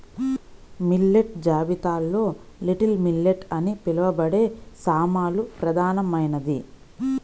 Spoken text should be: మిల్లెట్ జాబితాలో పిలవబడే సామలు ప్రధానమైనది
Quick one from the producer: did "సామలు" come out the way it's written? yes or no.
yes